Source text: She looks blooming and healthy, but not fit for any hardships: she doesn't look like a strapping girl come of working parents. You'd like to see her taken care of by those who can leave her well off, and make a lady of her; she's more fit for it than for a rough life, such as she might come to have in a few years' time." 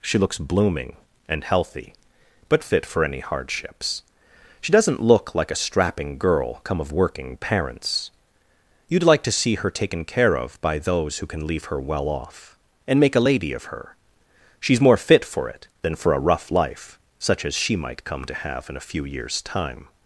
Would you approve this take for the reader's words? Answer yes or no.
no